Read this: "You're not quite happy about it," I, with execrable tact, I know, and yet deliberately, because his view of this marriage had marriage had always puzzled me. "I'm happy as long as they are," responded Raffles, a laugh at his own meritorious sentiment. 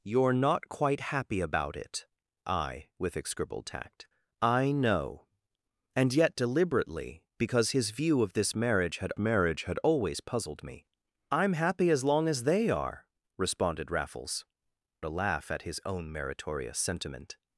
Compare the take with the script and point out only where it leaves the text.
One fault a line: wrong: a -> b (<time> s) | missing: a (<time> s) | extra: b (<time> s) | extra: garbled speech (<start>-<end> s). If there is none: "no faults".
no faults